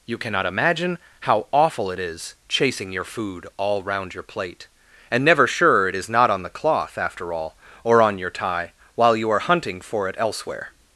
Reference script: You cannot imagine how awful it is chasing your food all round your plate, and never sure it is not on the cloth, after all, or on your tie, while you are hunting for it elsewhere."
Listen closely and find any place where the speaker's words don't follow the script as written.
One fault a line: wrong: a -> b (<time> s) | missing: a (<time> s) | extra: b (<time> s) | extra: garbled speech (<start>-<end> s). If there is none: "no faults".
no faults